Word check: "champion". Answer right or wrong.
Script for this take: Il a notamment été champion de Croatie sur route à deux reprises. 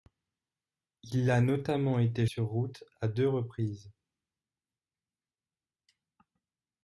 wrong